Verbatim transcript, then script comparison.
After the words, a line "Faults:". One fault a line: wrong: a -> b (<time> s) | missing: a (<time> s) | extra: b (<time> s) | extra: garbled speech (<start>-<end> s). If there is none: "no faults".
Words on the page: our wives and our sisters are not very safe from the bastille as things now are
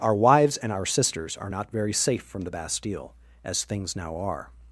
our wives and our sisters are not very safe from the bastille as things now are
Faults:
no faults